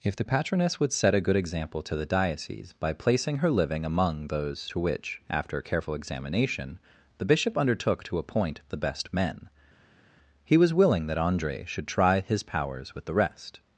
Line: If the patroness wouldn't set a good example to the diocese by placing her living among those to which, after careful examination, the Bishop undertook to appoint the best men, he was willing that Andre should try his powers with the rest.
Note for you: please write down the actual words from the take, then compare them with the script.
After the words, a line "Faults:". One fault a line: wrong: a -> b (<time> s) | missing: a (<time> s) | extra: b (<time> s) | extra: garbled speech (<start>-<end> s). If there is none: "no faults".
If the patroness would set a good example to the diocese by placing her living among those to which, after careful examination, the Bishop undertook to appoint the best men, he was willing that Andre should try his powers with the rest.
Faults:
wrong: wouldn't -> would (0.8 s)